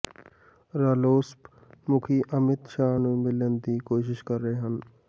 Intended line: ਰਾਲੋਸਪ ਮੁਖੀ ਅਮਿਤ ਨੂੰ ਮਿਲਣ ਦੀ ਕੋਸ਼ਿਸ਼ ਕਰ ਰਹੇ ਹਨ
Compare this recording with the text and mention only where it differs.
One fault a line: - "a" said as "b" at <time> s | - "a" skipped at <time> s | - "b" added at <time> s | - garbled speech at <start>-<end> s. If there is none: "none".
- "ਸ਼ਾਹ" added at 2.7 s